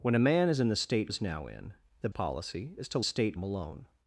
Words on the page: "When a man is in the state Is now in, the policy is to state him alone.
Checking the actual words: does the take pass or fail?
pass